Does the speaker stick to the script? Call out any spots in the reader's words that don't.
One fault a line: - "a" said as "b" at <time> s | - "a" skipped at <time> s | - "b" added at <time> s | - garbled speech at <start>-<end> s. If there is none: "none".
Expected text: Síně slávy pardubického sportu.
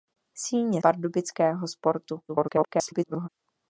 - "slávy" skipped at 0.8 s
- garbled speech at 2.3-3.3 s